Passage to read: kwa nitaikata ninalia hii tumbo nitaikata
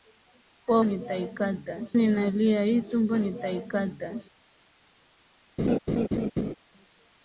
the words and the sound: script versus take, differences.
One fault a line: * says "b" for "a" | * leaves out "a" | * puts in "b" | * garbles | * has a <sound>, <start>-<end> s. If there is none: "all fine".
* has a laugh, 5.6-6.5 s